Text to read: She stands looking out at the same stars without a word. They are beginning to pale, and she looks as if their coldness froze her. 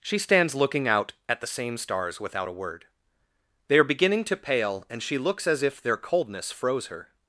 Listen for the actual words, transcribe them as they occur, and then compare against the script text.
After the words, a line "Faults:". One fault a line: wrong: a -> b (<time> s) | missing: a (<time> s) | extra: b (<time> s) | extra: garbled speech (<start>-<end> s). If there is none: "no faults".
She stands looking out at the same stars without a word. They are beginning to pale, and she looks as if their coldness froze her.
Faults:
no faults